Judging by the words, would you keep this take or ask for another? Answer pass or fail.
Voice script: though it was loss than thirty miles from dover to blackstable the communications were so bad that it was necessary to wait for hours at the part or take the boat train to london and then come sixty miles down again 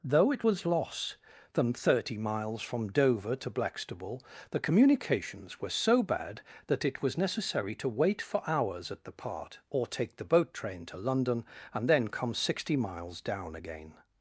pass